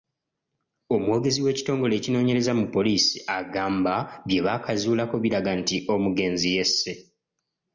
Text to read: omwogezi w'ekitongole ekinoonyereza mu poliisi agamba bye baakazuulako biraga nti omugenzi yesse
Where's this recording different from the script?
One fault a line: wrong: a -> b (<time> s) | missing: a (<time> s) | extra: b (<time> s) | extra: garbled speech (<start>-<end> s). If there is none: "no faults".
no faults